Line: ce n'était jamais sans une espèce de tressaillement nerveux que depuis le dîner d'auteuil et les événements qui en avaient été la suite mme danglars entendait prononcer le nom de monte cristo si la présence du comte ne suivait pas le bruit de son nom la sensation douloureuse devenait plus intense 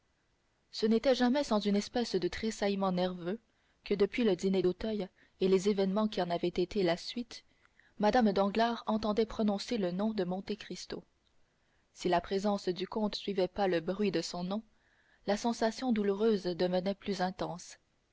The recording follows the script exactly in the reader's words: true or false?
false